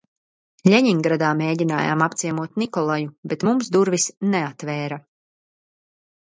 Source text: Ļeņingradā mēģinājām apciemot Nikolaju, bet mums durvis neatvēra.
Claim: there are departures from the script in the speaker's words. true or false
false